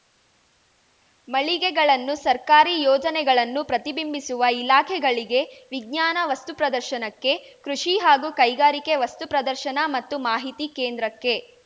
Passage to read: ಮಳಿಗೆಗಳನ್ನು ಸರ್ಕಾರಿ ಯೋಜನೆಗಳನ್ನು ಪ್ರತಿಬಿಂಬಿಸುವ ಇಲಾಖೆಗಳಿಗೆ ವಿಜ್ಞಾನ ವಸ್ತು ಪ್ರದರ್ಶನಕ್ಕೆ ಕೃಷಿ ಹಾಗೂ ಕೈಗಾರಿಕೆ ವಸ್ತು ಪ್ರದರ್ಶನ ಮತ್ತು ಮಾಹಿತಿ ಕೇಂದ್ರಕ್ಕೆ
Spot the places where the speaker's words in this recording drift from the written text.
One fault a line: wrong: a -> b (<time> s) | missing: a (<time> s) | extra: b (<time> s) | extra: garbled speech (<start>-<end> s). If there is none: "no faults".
no faults